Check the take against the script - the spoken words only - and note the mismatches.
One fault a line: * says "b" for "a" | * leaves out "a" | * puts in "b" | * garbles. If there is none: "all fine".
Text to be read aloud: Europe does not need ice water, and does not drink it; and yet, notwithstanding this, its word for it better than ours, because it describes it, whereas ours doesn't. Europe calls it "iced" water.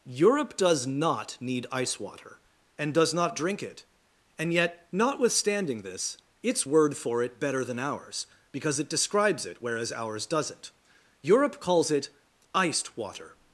all fine